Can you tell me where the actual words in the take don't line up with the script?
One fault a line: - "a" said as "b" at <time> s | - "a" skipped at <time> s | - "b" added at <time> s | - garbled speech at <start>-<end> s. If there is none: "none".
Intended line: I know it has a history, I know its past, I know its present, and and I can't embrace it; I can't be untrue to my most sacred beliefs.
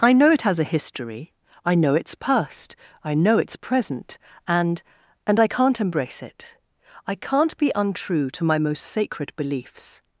none